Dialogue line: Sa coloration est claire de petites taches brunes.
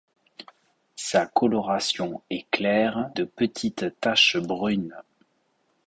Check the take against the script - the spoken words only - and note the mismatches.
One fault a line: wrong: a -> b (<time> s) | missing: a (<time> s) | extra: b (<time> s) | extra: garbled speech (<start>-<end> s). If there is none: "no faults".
no faults